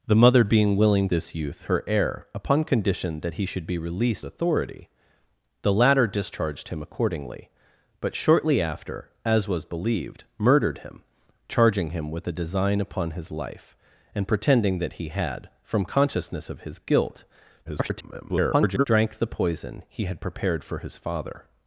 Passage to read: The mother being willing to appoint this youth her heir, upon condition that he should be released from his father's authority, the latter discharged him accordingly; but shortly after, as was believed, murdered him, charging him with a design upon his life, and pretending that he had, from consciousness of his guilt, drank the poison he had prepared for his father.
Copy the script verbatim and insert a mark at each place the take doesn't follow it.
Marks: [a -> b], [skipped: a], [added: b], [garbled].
The mother being willing [skipped: to appoint] this youth her heir, upon condition that he should be released [skipped: from his father's] authority, the latter discharged him accordingly; but shortly after, as was believed, murdered him, charging him with a design upon his life, and pretending that he had, from consciousness of his guilt, [garbled] drank the poison he had prepared for his father.